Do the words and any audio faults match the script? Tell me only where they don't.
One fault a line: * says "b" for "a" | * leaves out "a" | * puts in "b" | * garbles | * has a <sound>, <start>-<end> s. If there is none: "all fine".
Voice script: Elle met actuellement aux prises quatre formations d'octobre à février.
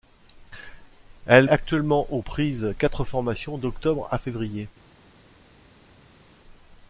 * leaves out "met"